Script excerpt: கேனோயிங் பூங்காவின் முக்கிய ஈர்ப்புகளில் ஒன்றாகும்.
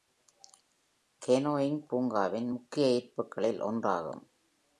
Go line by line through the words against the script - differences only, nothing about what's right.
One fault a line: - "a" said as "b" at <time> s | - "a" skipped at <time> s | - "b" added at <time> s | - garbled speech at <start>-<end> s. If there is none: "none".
none